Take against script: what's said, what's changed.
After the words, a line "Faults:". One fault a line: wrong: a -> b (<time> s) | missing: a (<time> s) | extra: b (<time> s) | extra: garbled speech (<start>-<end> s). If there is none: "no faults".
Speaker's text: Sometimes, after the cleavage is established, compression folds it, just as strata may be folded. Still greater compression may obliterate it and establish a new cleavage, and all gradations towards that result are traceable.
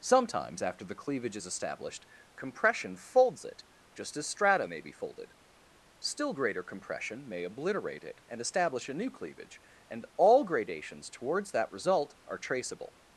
Sometimes, after the cleavage is established, compression folds it, just as strata may be folded. Still greater compression may obliterate it and establish a new cleavage, and all gradations towards that result are traceable.
Faults:
no faults